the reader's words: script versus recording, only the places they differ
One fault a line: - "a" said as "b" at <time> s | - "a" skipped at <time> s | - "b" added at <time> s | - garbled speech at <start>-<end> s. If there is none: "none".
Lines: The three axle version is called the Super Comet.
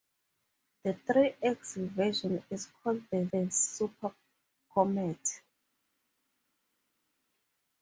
- "the" added at 3.3 s